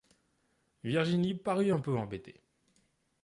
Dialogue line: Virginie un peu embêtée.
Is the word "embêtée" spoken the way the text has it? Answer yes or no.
yes